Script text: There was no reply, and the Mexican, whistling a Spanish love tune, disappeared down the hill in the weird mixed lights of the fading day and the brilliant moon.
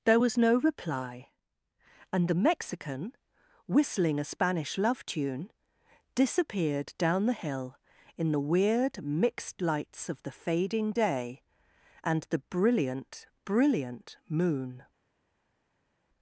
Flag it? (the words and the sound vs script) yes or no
yes